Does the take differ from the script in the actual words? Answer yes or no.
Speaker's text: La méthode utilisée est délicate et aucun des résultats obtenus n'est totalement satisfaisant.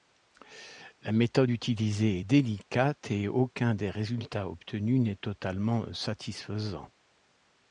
no